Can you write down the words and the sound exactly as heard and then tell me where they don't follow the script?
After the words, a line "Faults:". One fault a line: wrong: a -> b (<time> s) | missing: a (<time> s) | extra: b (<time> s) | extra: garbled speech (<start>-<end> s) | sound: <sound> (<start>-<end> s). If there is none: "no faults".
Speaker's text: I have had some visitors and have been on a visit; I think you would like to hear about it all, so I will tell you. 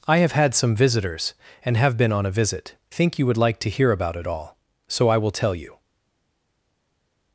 I have had some visitors and have been on a visit; think you would like to hear about it all, so I will tell you.
Faults:
missing: I (2.7 s)